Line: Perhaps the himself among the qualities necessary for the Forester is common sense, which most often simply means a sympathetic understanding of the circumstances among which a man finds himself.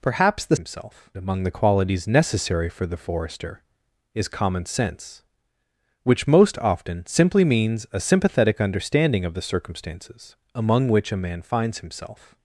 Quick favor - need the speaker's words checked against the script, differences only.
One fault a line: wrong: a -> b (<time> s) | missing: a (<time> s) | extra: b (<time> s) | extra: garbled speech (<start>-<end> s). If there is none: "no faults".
no faults